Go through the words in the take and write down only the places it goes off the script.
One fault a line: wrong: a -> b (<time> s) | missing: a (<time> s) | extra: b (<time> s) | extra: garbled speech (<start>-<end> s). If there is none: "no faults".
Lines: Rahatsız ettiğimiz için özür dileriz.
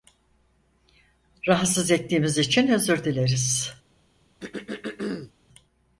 no faults